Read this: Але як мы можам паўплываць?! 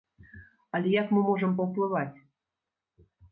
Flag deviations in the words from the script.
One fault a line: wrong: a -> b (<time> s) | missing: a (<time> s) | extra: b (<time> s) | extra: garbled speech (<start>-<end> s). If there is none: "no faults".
no faults